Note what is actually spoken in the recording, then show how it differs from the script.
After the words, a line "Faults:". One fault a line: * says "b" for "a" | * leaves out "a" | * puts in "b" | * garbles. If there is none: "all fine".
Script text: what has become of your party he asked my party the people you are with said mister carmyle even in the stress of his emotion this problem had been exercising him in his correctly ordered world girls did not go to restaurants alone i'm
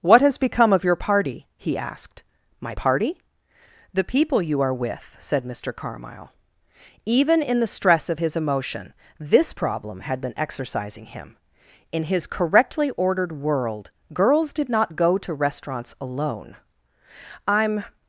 what has become of your party he asked my party the people you are with said mister carmyle even in the stress of his emotion this problem had been exercising him in his correctly ordered world girls did not go to restaurants alone i'm
Faults:
all fine